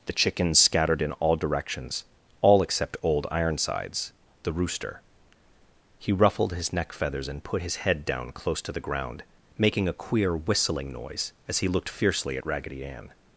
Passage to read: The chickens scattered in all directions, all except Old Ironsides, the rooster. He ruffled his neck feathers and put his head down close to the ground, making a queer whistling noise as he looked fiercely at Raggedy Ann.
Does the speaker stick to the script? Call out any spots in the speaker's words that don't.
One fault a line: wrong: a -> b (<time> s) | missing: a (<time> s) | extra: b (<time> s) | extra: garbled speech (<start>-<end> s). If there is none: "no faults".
no faults